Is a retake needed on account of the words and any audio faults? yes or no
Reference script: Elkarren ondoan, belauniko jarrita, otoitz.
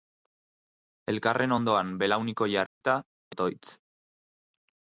yes